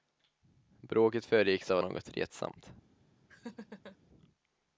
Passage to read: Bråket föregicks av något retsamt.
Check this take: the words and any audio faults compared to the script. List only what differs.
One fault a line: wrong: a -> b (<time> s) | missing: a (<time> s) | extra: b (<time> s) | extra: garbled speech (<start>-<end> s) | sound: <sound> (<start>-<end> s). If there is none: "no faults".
sound: laugh (3.3-4.0 s)